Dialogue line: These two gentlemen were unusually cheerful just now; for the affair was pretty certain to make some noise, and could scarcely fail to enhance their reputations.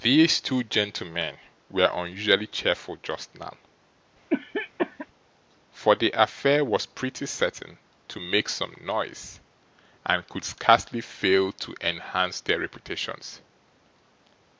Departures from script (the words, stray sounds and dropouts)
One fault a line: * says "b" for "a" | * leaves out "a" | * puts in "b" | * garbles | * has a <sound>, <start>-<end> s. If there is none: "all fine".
* has a cough, 4.3-5.1 s